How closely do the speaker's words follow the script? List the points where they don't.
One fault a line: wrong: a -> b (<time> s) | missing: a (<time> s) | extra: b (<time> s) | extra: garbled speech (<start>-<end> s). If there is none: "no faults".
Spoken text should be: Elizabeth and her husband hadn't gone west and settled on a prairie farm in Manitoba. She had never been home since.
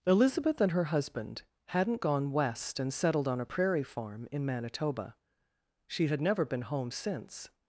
no faults